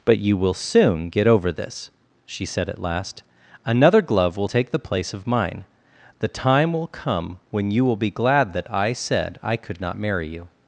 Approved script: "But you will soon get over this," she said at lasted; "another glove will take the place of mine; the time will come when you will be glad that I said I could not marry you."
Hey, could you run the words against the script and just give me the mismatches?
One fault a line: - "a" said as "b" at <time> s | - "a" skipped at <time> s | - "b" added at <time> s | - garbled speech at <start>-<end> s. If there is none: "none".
- "lasted" said as "last" at 2.8 s